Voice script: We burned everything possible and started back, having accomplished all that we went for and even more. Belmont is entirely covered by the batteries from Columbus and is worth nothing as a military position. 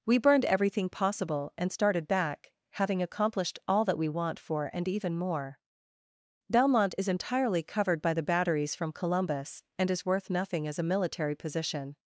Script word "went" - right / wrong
wrong